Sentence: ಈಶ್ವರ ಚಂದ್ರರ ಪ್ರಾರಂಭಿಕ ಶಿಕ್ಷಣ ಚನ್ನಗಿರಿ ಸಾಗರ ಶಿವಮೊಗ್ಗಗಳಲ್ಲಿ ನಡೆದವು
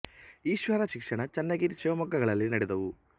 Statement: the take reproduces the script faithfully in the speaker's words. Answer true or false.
false